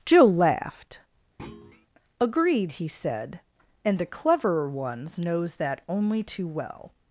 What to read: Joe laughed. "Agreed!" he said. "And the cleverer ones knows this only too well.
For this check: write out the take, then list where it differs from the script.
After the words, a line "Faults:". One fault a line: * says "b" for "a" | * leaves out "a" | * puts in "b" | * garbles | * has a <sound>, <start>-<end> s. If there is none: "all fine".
Joe laughed. "Agreed!" he said. "And the cleverer ones knows that only too well.
Faults:
* has a thud, 1.4-1.9 s
* says "that" for "this"